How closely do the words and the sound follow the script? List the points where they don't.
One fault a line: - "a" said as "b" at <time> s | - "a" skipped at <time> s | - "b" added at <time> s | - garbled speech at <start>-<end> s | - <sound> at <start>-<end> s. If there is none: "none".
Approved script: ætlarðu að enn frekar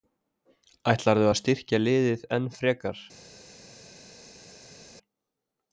- "styrkja liðið" added at 1.4 s